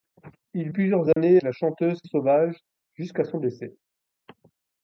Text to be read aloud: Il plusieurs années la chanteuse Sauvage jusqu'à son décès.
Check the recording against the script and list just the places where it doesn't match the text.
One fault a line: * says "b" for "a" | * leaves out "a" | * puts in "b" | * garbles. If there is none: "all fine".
all fine